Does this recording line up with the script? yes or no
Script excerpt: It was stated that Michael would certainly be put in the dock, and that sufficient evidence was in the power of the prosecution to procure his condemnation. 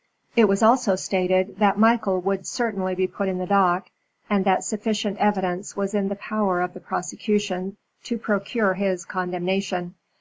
no